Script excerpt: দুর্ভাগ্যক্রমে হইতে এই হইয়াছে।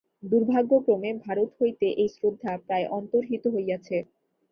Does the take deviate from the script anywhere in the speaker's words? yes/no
yes